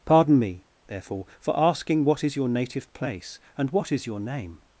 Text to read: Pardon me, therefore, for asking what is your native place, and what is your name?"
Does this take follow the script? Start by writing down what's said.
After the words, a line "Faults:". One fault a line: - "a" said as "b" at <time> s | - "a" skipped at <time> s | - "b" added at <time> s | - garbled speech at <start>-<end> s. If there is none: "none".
Pardon me, therefore, for asking what is your native place, and what is your name?"
Faults:
none